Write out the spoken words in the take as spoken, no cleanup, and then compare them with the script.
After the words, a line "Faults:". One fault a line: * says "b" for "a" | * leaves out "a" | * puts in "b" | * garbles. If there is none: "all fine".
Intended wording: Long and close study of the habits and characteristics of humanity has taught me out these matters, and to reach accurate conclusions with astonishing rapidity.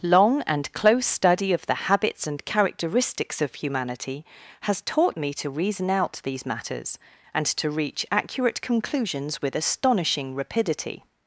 Long and close study of the habits and characteristics of humanity has taught me to reason out these matters, and to reach accurate conclusions with astonishing rapidity.
Faults:
* puts in "to reason"